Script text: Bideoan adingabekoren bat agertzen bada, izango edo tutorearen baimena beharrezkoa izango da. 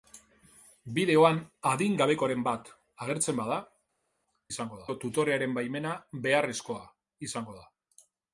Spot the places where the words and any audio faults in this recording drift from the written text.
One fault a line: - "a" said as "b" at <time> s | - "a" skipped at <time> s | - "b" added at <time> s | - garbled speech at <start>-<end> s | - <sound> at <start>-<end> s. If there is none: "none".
none